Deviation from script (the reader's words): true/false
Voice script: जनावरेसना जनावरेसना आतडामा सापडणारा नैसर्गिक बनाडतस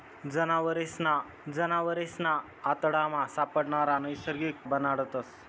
false